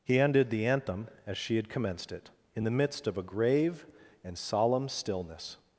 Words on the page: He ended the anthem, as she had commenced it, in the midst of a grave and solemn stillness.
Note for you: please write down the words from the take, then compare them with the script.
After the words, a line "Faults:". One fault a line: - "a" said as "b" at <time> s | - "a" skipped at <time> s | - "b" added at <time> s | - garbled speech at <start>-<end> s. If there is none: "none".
He ended the anthem, as she had commenced it, in the midst of a grave and solemn stillness.
Faults:
none